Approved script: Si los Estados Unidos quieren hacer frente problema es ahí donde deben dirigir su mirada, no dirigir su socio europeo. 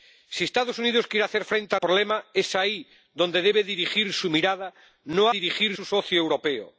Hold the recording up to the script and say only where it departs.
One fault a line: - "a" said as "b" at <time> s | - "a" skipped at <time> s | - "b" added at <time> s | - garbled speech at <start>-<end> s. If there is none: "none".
none